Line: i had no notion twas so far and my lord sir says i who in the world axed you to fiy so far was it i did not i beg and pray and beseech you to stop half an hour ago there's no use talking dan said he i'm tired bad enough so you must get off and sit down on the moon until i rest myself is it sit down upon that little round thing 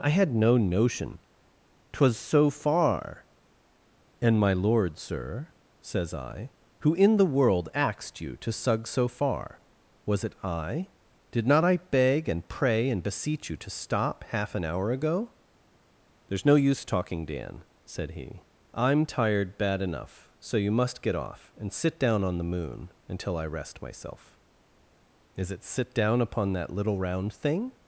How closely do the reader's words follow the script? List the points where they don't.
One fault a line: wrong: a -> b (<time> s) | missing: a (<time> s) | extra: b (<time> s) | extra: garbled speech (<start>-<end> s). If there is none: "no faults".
wrong: fiy -> sug (8.5 s)